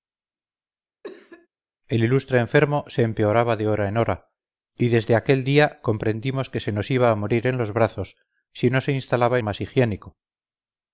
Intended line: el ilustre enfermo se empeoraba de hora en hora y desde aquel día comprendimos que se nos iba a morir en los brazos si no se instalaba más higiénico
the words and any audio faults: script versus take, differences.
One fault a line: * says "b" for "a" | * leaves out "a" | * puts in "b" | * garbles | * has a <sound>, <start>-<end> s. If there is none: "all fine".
* has a cough, 1.0-1.5 s